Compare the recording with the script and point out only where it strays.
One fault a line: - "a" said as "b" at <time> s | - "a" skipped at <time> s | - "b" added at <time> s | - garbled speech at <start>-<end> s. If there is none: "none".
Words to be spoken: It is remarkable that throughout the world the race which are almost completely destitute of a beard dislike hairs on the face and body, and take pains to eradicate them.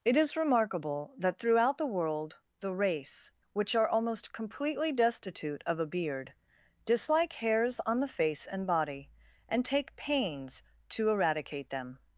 none